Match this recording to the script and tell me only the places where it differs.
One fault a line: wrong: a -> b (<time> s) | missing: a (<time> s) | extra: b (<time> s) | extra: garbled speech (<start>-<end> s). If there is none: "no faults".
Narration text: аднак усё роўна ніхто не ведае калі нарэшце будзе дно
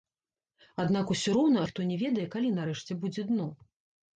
no faults